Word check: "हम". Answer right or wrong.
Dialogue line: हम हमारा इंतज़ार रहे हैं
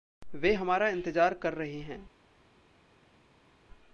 wrong